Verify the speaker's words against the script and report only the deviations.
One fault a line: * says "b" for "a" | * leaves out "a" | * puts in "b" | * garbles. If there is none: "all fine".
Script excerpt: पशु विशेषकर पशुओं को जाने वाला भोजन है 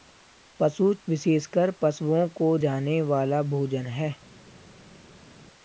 all fine